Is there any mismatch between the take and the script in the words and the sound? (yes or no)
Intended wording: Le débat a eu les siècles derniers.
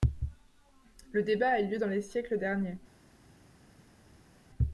yes